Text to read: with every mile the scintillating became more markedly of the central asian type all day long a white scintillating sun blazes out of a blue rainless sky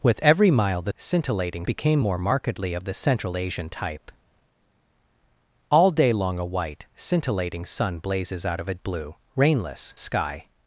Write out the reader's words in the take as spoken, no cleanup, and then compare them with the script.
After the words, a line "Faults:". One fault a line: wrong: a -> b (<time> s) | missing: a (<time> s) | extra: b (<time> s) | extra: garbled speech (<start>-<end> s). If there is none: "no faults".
with every mile the scintillating became more markedly of the central asian type all day long a white scintillating sun blazes out of a blue rainless sky
Faults:
no faults